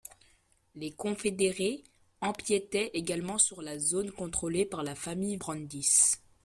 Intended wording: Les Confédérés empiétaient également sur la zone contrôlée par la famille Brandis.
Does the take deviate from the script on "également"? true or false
false